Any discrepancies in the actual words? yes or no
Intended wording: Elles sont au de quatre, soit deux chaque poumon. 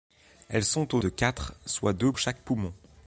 no